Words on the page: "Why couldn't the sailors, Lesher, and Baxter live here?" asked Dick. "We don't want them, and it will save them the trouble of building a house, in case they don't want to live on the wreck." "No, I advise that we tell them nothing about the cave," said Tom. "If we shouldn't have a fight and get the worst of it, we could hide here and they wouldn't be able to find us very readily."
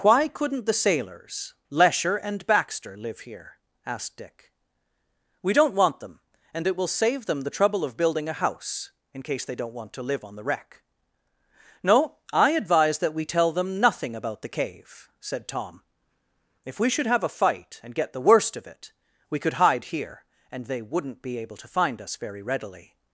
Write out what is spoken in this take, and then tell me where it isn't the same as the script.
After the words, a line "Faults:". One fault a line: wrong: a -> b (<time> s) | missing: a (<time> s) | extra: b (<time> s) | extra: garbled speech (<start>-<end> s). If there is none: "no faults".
"Why couldn't the sailors, Lesher, and Baxter live here?" asked Dick. "We don't want them, and it will save them the trouble of building a house, in case they don't want to live on the wreck." "No, I advise that we tell them nothing about the cave," said Tom. "If we should have a fight and get the worst of it, we could hide here and they wouldn't be able to find us very readily."
Faults:
wrong: shouldn't -> should (16.9 s)